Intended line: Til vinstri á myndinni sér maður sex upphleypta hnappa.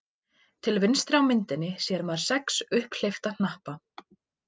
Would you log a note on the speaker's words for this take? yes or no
no